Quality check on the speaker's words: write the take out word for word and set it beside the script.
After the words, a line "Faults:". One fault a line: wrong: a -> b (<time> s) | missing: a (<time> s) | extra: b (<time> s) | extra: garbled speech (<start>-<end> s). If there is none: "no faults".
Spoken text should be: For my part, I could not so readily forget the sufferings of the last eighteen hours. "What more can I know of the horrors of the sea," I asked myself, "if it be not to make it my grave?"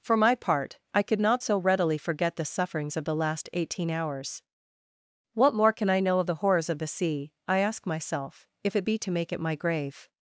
For my part, I could not so readily forget the sufferings of the last eighteen hours. "What more can I know of the horrors of the sea," I ask myself, "if it be to make it my grave?"
Faults:
wrong: asked -> ask (7.6 s)
missing: not (9.0 s)